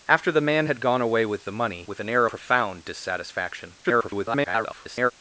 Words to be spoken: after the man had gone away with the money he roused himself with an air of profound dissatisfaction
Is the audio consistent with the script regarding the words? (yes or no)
no